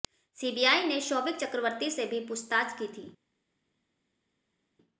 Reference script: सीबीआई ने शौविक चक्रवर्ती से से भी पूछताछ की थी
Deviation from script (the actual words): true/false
true